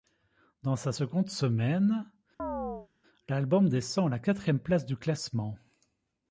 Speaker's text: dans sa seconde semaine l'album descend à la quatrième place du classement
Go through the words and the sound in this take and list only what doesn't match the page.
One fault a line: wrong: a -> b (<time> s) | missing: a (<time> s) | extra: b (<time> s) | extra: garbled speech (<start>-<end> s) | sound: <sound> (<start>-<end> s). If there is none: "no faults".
sound: chirp (2.4-2.9 s)